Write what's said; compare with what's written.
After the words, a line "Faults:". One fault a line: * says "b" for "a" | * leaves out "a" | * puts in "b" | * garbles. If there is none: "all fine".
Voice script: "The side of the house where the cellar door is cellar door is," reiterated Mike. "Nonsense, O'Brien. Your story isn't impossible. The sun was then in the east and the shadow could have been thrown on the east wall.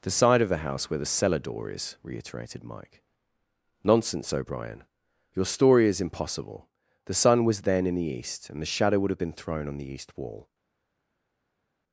"The side of the house where the cellar door is," reiterated Mike. "Nonsense, O'Brien. Your story is impossible. The sun was then in the east and the shadow would have been thrown on the east wall.
Faults:
* leaves out "cellar door is"
* says "is" for "isn't"
* says "would" for "could"